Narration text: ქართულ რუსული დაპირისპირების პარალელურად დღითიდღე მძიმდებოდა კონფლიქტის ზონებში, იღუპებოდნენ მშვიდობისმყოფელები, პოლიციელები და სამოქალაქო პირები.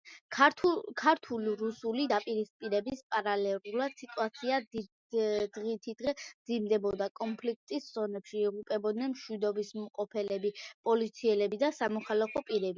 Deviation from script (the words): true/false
true